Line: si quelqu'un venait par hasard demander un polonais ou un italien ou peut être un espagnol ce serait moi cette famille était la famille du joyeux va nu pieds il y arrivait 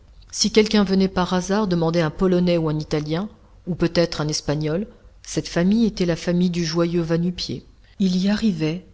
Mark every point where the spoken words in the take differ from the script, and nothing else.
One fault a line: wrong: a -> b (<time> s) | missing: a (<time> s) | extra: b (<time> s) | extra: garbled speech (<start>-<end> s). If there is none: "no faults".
missing: ce serait moi (4.9 s)